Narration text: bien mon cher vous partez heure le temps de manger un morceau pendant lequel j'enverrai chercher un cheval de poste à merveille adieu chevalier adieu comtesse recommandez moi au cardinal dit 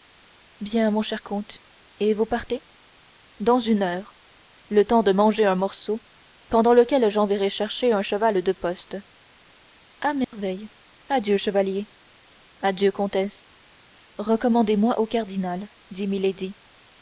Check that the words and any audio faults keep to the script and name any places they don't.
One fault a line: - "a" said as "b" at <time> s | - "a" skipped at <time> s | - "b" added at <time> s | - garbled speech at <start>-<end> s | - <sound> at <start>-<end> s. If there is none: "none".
- "comte et" added at 1.2 s
- "dans une" added at 3.4 s
- dropout at 10.2-10.3 s